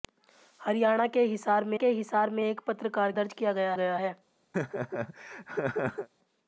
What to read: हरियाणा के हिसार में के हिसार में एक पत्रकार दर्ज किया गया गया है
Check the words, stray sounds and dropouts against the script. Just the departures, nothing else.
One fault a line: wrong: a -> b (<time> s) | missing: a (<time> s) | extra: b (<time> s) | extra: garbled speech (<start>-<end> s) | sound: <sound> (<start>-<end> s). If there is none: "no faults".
sound: laugh (4.5-6.1 s)